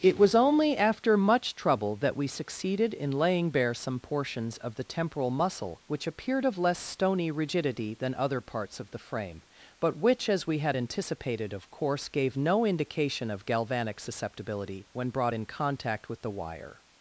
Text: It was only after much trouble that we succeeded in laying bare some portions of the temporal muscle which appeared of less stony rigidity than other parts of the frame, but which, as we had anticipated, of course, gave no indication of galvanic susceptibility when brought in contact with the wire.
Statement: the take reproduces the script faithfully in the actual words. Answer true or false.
true